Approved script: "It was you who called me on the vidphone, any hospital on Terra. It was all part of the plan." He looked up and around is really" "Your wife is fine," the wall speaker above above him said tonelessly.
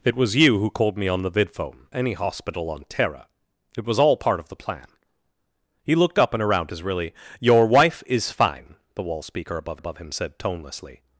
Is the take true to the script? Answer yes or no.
yes